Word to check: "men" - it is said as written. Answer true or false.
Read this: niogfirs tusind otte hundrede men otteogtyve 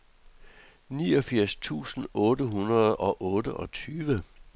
false